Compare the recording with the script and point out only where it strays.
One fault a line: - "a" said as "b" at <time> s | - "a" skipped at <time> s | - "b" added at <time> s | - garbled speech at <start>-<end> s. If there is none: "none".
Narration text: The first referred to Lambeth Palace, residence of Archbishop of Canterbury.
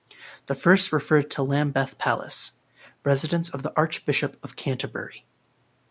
- "the" added at 3.6 s